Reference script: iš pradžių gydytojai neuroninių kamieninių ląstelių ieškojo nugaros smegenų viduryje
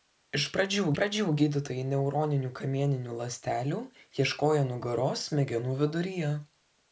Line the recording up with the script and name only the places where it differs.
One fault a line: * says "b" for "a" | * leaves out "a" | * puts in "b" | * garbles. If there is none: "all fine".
* puts in "pradžių"